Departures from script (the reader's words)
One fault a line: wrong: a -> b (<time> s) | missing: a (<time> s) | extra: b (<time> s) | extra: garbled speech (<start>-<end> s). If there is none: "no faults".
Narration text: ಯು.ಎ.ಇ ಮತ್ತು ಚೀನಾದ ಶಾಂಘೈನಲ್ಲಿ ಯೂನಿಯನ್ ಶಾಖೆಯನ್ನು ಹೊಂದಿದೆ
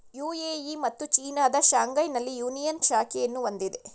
no faults